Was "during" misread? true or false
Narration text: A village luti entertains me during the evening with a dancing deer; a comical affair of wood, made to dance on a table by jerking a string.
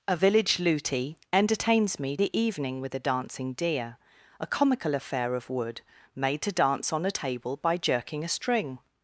true